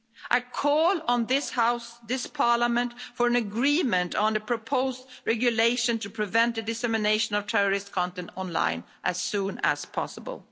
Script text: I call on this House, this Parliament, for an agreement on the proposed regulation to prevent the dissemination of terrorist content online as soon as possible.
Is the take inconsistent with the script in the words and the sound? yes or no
no